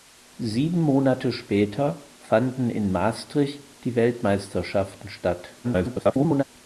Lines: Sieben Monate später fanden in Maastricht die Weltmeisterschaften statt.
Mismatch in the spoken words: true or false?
true